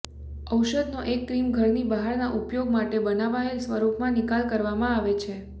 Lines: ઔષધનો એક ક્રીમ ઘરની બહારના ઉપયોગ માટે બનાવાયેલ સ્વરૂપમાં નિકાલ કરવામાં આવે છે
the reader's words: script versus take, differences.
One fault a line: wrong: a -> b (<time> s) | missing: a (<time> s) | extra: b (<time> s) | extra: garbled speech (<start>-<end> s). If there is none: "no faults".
no faults